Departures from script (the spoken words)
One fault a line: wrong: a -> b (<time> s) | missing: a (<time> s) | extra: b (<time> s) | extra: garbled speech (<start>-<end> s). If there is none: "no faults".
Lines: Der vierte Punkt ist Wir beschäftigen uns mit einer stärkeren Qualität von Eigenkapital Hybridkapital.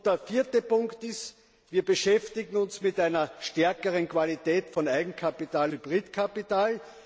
no faults